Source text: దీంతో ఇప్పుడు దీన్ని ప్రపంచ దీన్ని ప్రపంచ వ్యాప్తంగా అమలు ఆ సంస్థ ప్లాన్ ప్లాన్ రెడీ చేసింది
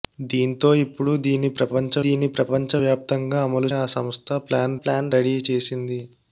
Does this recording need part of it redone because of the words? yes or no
no